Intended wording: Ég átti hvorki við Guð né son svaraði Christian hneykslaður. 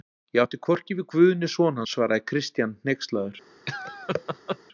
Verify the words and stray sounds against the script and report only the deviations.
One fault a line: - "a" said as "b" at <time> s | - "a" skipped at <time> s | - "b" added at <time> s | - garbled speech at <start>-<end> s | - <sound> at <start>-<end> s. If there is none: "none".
- laugh at 3.7-4.6 s